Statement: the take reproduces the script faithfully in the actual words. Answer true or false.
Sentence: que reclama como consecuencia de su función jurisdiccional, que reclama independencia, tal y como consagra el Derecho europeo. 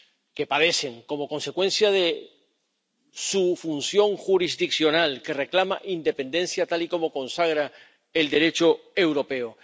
false